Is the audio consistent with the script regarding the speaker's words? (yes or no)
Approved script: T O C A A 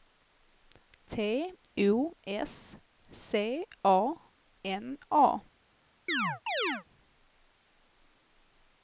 no